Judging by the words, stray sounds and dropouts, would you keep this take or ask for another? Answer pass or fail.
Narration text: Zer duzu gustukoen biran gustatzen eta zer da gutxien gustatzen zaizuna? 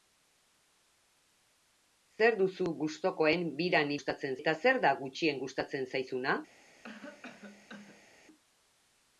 fail